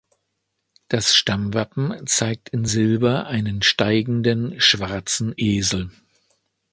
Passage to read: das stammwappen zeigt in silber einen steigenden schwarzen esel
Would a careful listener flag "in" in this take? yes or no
no